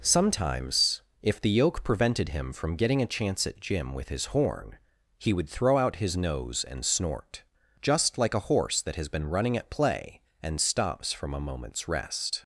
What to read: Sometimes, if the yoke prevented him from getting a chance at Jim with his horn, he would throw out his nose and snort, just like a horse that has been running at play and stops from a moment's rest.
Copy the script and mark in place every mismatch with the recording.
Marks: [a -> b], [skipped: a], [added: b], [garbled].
Sometimes, if the yoke prevented him from getting a chance at Jim with his horn, he would throw out his nose and snort, just like a horse that has been running at play and stops from a moment's rest.